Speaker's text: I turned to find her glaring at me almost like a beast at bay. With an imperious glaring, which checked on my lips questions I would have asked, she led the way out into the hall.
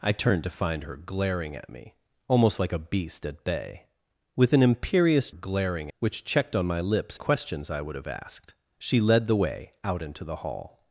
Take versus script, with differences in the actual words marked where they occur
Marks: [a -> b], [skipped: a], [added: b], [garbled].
I turned to find her glaring at me almost like a beast at bay. With an imperious glaring, which checked on my lips questions I would have asked, she led the way out into the hall.